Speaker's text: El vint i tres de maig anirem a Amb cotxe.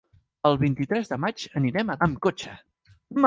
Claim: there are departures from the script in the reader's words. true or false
false